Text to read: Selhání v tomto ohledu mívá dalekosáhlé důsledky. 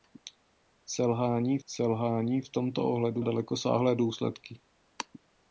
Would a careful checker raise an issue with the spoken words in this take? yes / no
yes